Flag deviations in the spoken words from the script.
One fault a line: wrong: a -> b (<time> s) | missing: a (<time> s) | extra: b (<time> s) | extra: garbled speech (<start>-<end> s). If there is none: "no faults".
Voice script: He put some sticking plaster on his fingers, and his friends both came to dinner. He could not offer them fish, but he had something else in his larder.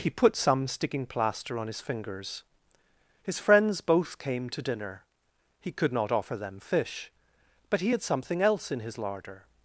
missing: and (2.4 s)